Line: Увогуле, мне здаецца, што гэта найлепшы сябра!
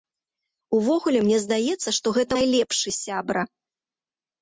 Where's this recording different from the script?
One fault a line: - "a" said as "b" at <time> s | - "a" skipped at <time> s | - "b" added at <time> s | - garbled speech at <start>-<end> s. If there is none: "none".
none